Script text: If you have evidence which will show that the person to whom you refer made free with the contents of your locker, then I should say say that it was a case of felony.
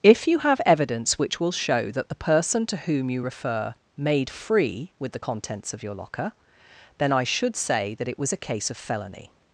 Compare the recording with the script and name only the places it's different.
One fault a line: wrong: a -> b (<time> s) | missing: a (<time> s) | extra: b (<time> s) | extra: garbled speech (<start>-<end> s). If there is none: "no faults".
missing: say (7.9 s)